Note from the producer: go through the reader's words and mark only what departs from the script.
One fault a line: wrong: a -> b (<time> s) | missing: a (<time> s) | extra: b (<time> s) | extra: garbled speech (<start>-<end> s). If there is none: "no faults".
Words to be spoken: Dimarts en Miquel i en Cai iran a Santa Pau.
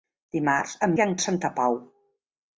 missing: Miquel (0.9 s)
missing: Cai iran (1.1 s)